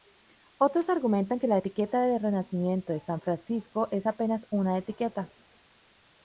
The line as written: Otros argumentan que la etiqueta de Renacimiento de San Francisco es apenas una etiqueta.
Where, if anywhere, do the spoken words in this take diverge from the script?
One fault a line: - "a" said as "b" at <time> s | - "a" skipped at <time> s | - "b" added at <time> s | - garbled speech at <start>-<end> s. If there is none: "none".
none